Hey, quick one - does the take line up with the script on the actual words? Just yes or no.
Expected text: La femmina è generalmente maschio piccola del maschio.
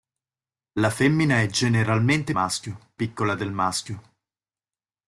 yes